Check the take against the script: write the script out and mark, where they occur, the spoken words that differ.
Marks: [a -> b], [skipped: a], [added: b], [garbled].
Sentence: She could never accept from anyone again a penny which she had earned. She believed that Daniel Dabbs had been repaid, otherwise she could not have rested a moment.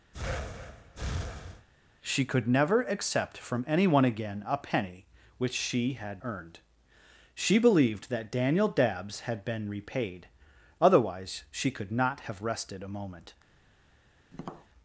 She could never accept from anyone again a penny which she had earned. She believed that Daniel Dabbs had been repaid, otherwise she could not have rested a moment.